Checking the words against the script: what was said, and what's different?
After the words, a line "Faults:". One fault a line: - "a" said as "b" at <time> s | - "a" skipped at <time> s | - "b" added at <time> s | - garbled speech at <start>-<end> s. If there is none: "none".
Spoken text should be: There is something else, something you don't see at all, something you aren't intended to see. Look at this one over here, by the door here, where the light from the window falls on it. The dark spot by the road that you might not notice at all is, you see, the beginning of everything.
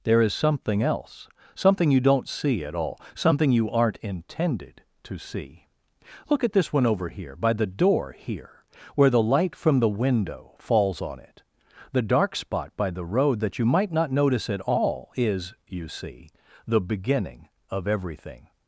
There is something else, something you don't see at all, something you aren't intended to see. Look at this one over here, by the door here, where the light from the window falls on it. The dark spot by the road that you might not notice at all is, you see, the beginning of everything.
Faults:
none